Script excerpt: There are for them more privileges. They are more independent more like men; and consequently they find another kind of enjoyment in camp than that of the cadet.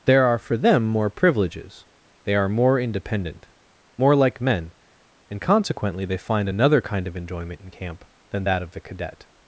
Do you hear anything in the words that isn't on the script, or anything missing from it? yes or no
no